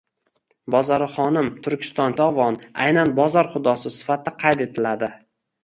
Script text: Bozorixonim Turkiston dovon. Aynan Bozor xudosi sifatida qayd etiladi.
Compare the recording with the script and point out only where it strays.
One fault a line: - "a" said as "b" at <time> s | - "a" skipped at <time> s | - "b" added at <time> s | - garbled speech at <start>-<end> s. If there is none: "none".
none